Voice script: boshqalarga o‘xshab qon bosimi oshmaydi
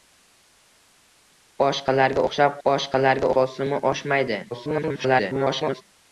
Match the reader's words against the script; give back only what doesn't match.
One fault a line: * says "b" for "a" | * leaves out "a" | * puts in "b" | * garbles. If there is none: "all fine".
* says "boshqalarga" for "qon"
* garbles